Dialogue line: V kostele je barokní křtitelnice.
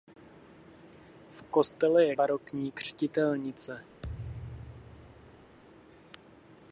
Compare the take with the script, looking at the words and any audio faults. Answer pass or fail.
fail